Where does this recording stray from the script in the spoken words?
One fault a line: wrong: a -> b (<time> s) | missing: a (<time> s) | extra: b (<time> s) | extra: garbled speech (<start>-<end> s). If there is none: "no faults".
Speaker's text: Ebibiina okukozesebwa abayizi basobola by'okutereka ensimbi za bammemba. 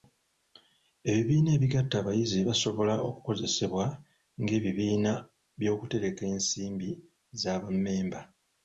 wrong: okukozesebwa -> ebigatta (1.6 s)
extra: okukozesebwa ng'ebibiina (3.1 s)